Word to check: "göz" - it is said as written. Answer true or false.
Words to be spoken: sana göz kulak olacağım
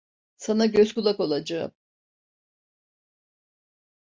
true